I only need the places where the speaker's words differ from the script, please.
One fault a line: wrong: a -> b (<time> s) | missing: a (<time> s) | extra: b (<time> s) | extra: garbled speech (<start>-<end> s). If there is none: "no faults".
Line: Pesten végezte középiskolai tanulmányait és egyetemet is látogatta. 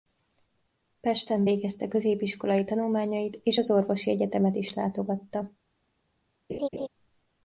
extra: az orvosi (3.6 s)